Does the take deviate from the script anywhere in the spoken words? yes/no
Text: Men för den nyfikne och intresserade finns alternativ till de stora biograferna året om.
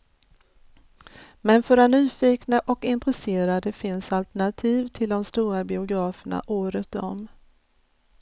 no